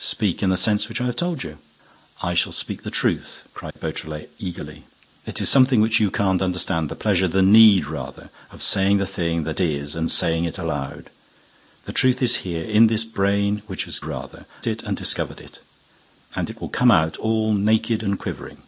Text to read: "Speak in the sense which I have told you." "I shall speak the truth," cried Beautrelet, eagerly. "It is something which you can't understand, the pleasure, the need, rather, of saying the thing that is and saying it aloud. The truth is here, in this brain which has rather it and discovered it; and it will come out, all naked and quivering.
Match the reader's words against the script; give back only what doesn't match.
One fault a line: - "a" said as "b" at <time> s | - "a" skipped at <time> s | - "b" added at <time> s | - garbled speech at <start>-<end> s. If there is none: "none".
none